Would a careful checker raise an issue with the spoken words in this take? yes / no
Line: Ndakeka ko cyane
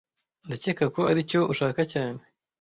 yes